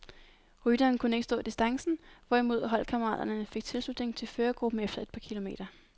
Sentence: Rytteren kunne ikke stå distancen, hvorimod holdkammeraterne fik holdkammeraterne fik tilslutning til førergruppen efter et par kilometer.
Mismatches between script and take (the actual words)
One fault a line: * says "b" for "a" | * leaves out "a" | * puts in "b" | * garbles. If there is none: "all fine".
* leaves out "holdkammeraterne fik"